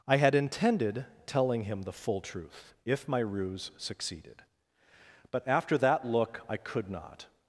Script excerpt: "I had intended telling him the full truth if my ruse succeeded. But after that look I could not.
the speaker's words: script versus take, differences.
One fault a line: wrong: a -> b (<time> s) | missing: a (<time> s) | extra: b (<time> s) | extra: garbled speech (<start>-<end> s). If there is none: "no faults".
no faults